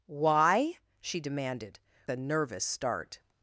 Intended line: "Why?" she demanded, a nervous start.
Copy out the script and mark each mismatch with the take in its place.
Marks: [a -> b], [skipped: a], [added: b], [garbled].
"Why?" she demanded, a nervous start.